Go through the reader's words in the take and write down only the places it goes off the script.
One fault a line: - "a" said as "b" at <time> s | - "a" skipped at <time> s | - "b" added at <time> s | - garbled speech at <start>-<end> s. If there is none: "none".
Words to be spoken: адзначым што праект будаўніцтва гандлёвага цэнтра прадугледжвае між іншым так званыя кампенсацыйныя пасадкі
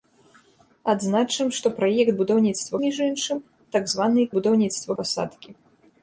- "гандлёвага цэнтра прадугледжвае" skipped at 2.8 s
- "кампенсацыйныя" said as "будаўніцтва" at 4.4 s